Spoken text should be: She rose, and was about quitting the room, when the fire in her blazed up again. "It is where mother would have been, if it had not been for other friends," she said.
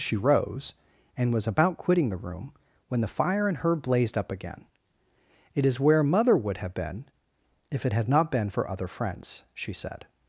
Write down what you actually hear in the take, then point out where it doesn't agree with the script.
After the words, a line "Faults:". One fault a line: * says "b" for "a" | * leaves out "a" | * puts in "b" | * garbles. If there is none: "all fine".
She rose, and was about quitting the room, when the fire in her blazed up again. "It is where mother would have been, if it had not been for other friends," she said.
Faults:
all fine